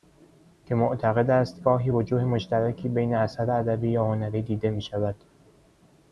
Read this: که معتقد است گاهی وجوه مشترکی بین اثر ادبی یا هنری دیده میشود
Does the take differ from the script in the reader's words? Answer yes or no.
no